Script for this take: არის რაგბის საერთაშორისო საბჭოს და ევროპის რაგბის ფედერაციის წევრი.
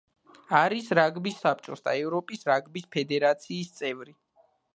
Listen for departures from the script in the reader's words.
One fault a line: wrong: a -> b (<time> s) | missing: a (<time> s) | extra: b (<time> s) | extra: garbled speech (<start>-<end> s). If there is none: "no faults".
missing: საერთაშორისო (1.4 s)